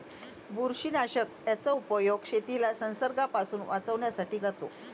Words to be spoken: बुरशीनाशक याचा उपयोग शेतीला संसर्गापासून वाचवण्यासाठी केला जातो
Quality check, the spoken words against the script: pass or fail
fail